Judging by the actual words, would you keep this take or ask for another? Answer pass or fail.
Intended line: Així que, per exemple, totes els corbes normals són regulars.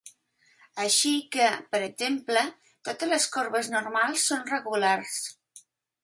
fail